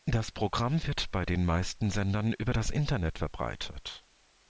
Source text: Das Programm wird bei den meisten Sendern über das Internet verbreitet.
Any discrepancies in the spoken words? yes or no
no